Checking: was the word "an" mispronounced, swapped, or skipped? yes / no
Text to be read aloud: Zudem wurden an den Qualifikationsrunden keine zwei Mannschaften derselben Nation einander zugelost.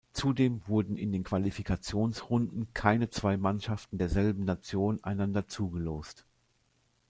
yes